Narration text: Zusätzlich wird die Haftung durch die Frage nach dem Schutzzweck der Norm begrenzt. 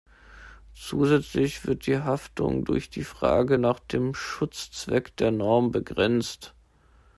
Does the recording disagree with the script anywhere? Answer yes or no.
no